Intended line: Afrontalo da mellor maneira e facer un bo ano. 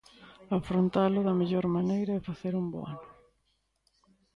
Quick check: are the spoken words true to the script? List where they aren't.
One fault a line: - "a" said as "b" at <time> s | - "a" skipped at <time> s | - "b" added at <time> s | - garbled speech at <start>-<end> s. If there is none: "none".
none